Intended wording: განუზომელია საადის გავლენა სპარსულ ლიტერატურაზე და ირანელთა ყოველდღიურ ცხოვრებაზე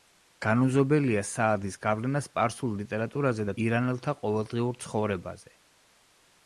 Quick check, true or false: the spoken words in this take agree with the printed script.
true